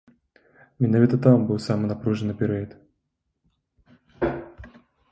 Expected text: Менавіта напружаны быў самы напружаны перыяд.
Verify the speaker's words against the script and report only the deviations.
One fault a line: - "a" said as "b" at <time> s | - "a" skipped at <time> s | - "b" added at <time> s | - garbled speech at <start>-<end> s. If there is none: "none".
- "напружаны" said as "там" at 1.2 s